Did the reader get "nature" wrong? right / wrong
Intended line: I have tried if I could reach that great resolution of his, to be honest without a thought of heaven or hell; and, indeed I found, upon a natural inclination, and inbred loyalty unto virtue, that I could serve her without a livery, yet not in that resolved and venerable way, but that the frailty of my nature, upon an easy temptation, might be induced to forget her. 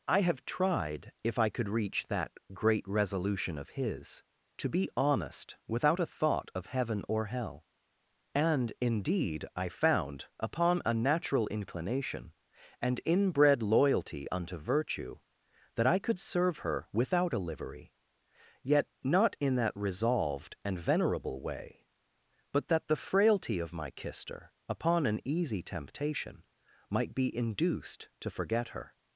wrong